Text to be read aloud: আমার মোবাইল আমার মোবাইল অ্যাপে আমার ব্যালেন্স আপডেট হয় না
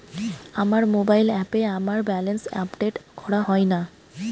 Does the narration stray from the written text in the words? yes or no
yes